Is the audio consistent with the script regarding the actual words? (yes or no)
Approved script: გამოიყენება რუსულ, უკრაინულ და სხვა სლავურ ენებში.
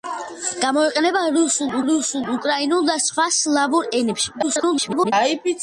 no